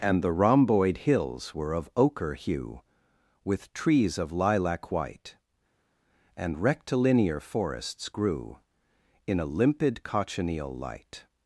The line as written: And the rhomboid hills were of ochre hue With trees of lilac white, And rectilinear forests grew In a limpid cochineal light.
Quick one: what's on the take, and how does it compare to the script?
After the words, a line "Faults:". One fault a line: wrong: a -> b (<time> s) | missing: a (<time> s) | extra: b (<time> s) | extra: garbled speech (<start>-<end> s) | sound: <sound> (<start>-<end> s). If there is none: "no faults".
And the rhomboid hills were of ochre hue With trees of lilac white, And rectilinear forests grew In a limpid cochineal light.
Faults:
no faults